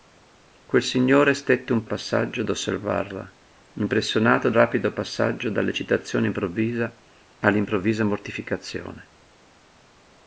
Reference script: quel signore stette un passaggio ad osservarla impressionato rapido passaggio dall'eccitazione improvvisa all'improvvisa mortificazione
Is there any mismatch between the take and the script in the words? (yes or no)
no